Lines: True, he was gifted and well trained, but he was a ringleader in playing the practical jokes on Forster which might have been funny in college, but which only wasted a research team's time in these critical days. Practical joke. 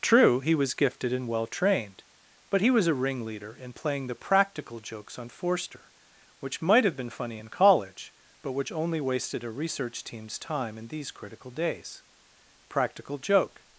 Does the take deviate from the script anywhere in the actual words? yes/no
no